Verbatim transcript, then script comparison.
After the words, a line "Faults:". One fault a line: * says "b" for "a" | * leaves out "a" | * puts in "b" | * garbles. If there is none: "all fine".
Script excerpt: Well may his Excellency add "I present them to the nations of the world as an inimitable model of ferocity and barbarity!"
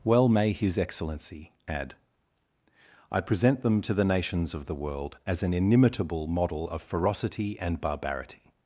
Well may his Excellency add "I present them to the nations of the world as an inimitable model of ferocity and barbarity!"
Faults:
all fine